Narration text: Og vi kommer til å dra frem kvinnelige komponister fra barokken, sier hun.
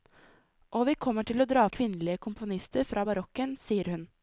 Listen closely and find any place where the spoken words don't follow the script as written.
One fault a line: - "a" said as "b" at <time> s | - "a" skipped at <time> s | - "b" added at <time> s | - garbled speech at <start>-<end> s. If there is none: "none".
- "frem" skipped at 1.6 s